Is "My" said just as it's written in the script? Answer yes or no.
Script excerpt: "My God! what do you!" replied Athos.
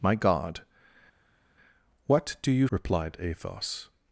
yes